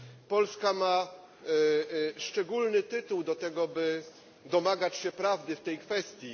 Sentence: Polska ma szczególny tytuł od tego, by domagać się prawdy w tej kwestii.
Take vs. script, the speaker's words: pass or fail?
fail